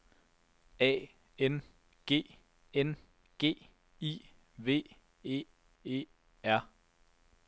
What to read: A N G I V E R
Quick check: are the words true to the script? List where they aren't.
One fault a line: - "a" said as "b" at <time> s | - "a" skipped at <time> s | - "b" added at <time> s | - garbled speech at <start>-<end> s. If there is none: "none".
- "N G" added at 2.7 s
- "E" added at 5.8 s